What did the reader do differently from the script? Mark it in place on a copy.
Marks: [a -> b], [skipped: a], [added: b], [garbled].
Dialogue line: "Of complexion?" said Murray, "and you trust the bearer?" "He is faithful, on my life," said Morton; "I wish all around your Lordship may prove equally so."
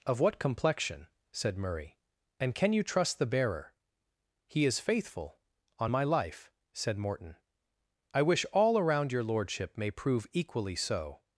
"Of [added: what] complexion?" said Murray, "and [added: can] you trust the bearer?" "He is faithful, on my life," said Morton; "I wish all around your Lordship may prove equally so."